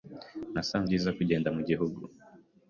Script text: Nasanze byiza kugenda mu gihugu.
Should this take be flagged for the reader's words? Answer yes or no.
no